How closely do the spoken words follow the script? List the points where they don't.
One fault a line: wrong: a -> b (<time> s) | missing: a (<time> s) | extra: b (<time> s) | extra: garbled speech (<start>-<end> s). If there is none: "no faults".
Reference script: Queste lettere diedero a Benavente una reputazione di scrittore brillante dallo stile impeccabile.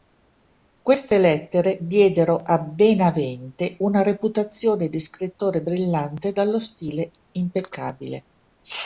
no faults